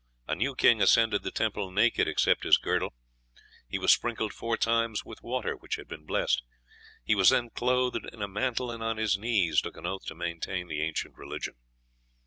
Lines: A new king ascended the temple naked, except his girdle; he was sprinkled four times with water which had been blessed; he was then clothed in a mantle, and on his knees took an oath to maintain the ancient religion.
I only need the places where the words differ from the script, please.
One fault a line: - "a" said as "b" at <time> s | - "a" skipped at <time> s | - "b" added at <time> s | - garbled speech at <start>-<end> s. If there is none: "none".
none